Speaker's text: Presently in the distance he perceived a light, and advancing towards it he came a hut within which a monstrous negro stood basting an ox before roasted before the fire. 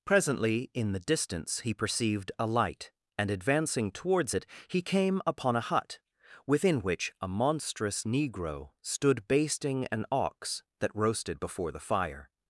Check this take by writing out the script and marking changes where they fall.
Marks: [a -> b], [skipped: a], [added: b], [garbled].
Presently in the distance he perceived a light, and advancing towards it he came [added: upon] a hut within which a monstrous negro stood basting an ox [before -> that] roasted before the fire.